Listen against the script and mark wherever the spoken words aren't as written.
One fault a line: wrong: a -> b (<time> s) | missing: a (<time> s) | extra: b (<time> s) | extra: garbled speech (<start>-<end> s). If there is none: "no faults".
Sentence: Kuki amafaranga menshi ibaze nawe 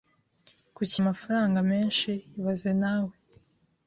no faults